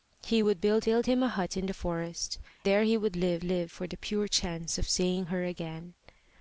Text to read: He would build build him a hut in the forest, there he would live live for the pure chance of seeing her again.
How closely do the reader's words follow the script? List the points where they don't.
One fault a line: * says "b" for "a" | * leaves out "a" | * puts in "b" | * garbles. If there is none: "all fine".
all fine